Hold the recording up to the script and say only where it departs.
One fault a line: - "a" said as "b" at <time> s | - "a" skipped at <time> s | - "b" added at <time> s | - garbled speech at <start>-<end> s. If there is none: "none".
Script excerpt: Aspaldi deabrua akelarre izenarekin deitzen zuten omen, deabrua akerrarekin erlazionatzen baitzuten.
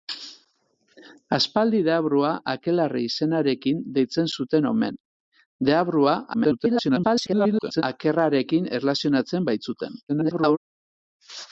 - garbled speech at 6.3-7.8 s
- garbled speech at 10.1-10.6 s